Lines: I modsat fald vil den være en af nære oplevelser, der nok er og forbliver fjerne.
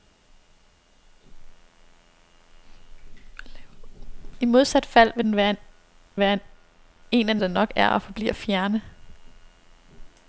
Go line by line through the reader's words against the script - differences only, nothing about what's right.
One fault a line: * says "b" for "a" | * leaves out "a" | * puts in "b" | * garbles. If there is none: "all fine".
* puts in "være"
* leaves out "nære oplevelser"